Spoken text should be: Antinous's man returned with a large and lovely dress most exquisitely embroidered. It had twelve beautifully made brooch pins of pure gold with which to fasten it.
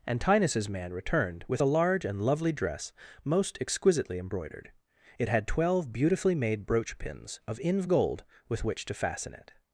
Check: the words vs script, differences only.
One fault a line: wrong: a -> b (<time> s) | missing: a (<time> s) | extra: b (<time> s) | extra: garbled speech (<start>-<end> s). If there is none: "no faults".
wrong: pure -> inv (7.6 s)